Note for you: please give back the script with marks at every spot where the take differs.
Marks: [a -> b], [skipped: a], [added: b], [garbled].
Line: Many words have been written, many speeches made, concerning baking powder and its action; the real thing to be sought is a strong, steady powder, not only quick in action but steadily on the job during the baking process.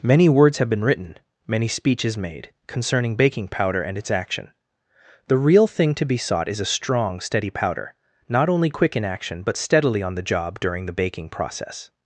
Many words have been written, many speeches made, concerning baking powder and its action; the real thing to be sought is a strong, steady powder, not only quick in action but steadily on the job during the baking process.